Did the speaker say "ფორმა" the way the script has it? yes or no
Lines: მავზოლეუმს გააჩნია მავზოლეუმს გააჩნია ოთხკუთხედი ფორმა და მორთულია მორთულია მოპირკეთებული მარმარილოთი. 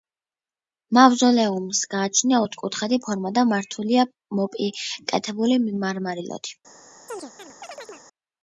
yes